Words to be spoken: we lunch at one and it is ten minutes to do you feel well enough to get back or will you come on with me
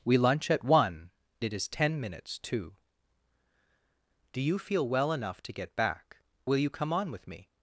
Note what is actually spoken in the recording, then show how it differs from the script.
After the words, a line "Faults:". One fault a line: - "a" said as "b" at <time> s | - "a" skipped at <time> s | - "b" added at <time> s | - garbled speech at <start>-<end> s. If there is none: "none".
we lunch at one it is ten minutes to do you feel well enough to get back will you come on with me
Faults:
- "and" skipped at 1.1 s
- "or" skipped at 6.2 s